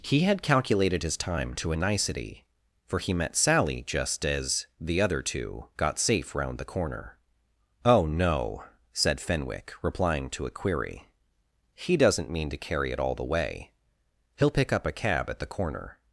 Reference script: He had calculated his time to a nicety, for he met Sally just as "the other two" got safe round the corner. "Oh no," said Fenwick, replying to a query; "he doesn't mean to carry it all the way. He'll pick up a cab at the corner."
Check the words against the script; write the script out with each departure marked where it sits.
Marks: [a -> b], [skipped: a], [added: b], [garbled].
He had calculated his time to a nicety, for he met Sally just as "the other two" got safe round the corner. "Oh no," said Fenwick, replying to a query; "he doesn't mean to carry it all the way. He'll pick up a cab at the corner."